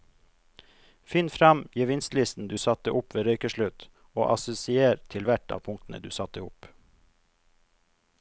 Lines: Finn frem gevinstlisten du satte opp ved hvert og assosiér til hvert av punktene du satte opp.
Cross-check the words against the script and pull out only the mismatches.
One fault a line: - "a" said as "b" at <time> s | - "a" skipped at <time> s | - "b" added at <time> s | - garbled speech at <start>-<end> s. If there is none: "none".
- "hvert" said as "røykeslutt" at 3.3 s